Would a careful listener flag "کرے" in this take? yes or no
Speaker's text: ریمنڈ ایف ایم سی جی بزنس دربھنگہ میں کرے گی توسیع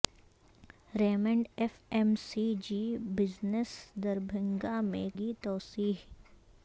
yes